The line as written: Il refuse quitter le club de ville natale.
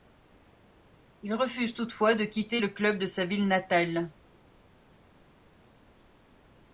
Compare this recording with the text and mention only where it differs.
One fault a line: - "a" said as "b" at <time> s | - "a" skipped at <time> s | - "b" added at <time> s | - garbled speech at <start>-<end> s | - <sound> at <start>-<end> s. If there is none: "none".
- "toutefois de" added at 1.8 s
- "sa" added at 3.1 s